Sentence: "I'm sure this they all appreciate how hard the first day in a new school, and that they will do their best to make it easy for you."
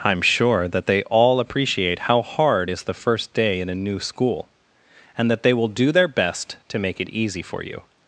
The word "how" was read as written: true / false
true